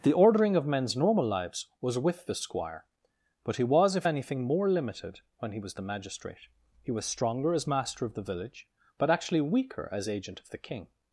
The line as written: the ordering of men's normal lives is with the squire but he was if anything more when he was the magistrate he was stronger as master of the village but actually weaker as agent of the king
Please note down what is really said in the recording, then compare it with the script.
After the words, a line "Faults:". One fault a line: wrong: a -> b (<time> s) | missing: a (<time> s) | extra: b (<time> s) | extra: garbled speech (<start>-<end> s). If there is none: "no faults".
the ordering of men's normal lives was with the squire but he was if anything more limited when he was the magistrate he was stronger as master of the village but actually weaker as agent of the king
Faults:
wrong: is -> was (1.8 s)
extra: limited (4.7 s)